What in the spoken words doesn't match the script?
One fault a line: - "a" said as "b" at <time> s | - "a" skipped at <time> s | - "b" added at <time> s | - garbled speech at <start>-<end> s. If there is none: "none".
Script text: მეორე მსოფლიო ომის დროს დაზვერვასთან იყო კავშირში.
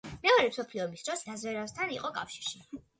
none